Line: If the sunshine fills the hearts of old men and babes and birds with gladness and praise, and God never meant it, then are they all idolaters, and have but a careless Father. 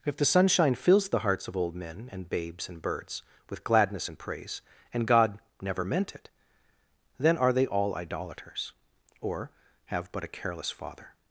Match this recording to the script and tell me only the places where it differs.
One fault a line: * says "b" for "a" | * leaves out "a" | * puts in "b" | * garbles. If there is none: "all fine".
* says "or" for "and"